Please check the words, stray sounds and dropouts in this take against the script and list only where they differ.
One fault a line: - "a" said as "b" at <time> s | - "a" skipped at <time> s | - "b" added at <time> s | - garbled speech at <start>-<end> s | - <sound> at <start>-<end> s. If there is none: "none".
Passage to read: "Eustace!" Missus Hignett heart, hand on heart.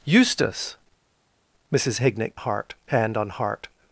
none